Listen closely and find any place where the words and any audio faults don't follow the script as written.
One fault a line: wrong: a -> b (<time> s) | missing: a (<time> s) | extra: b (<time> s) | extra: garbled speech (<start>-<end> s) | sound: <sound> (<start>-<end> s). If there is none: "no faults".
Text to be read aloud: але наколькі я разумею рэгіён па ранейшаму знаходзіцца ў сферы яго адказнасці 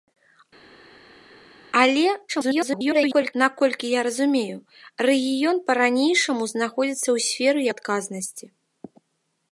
extra: garbled speech (2.3-3.3 s)
missing: яго (7.6 s)